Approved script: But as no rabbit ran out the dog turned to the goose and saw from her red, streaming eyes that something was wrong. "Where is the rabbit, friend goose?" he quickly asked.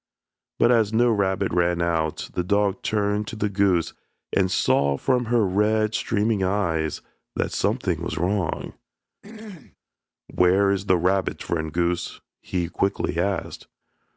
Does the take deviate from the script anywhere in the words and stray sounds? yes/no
yes